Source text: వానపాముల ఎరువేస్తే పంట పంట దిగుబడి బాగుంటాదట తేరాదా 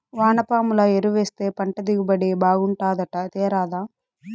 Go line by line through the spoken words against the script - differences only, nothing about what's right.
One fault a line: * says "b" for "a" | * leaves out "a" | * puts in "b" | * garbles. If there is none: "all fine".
* leaves out "పంట"